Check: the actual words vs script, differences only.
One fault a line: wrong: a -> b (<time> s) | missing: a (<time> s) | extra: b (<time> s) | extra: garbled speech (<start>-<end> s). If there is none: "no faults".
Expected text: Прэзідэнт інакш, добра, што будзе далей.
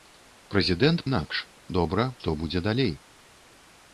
no faults